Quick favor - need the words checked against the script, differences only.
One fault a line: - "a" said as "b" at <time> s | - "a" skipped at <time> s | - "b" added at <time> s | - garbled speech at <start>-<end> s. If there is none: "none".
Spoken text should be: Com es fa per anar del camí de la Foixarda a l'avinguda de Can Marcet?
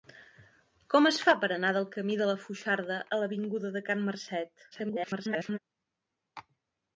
- garbled speech at 4.7-5.6 s